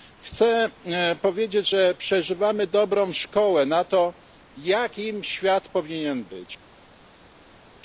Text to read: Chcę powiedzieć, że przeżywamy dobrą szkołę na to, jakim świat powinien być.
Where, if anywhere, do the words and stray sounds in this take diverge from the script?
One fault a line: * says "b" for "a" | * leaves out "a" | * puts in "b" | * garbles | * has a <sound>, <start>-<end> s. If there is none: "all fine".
all fine